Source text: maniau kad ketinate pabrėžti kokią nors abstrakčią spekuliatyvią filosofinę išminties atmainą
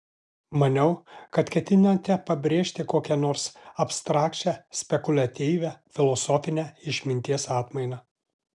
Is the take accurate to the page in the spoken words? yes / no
yes